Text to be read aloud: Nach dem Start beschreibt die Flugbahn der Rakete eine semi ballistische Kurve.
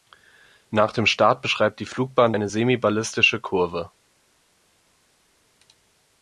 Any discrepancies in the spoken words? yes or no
yes